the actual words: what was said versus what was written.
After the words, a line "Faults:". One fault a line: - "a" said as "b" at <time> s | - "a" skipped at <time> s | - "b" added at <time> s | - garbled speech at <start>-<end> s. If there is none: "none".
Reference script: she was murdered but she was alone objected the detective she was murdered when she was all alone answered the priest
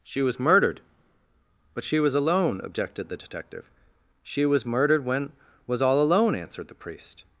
she was murdered but she was alone objected the detective she was murdered when was all alone answered the priest
Faults:
- "she" skipped at 5.3 s